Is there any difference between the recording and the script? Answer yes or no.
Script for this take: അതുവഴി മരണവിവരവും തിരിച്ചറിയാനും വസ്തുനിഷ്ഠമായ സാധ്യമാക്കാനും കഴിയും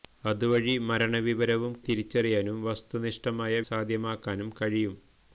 no